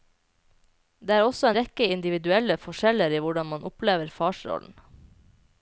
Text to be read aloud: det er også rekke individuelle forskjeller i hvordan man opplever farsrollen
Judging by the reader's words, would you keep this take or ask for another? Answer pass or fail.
pass